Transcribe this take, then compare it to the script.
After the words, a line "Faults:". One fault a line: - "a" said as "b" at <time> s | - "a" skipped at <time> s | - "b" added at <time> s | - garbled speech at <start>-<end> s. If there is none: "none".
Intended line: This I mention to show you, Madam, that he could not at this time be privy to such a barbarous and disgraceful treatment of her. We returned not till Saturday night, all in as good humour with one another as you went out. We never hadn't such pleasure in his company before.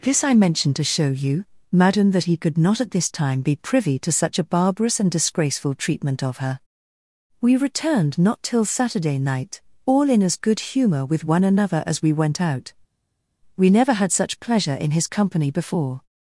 This I mention to show you, Madam, that he could not at this time be privy to such a barbarous and disgraceful treatment of her. We returned not till Saturday night, all in as good humour with one another as we went out. We never had such pleasure in his company before.
Faults:
- "you" said as "we" at 12.0 s
- "hadn't" said as "had" at 13.9 s